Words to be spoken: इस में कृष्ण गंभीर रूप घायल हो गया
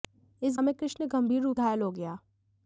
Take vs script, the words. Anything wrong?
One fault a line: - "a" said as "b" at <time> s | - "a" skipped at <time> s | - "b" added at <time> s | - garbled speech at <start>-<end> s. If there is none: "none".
none